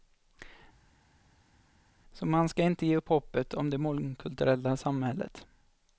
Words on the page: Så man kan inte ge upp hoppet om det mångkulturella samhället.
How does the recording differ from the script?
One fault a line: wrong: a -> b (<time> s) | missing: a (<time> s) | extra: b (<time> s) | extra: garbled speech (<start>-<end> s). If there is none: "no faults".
wrong: kan -> ska (2.5 s)